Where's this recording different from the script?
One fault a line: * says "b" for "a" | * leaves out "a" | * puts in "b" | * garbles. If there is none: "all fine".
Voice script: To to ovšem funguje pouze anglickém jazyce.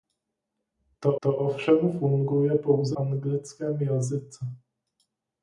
all fine